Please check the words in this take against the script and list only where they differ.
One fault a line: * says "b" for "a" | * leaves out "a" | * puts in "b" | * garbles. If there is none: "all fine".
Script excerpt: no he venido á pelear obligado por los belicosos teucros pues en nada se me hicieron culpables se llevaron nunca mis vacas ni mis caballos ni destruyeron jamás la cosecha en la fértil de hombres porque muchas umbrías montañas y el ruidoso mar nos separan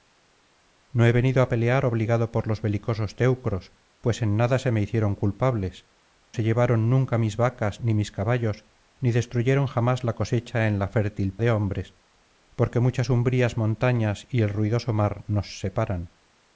all fine